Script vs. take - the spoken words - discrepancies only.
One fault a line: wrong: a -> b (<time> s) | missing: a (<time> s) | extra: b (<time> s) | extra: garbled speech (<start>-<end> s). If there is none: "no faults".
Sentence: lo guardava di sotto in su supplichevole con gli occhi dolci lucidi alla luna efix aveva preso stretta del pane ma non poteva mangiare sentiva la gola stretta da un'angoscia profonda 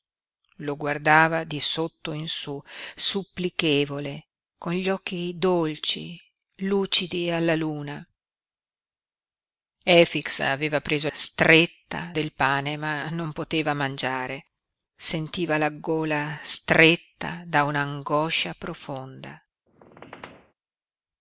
no faults